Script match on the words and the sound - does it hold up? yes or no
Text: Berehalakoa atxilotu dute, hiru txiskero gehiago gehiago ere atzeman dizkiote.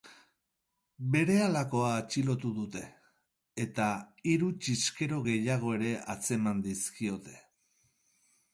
no